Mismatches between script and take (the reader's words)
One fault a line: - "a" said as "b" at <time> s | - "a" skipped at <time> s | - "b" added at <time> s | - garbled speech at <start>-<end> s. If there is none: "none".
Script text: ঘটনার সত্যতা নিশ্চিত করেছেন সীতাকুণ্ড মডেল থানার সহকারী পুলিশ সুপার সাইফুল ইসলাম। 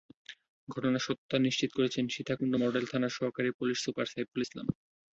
none